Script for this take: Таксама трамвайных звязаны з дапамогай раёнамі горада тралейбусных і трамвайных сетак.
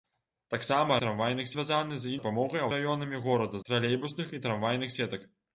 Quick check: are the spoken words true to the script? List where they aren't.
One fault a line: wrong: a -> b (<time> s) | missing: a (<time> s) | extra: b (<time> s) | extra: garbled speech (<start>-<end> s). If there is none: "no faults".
no faults